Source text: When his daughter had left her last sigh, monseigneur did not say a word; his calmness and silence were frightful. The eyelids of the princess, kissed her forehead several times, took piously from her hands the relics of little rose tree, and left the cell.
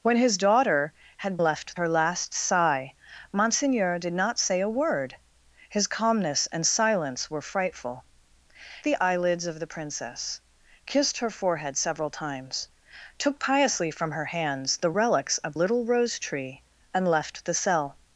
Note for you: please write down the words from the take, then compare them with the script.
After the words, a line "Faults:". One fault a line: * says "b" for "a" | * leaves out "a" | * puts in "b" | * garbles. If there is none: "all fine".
When his daughter had left her last sigh, monseigneur did not say a word; his calmness and silence were frightful. The eyelids of the princess, kissed her forehead several times, took piously from her hands the relics of little rose tree, and left the cell.
Faults:
all fine